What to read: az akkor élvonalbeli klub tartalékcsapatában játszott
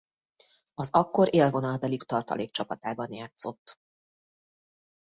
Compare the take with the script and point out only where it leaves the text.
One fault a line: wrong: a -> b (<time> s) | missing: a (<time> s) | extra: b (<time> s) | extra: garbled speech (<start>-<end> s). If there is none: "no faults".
missing: klub (2.0 s)